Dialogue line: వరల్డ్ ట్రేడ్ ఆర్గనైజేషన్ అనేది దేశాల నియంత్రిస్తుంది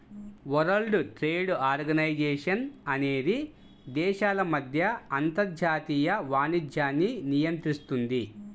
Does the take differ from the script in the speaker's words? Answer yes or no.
yes